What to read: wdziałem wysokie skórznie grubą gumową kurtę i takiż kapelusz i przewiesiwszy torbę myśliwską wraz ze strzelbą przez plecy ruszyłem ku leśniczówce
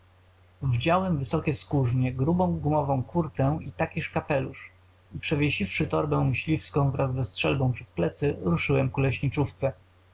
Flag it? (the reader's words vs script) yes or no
no